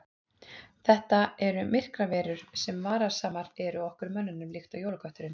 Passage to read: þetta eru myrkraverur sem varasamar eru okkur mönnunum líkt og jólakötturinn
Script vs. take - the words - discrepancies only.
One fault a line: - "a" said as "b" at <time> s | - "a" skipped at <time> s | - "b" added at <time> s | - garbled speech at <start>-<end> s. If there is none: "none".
none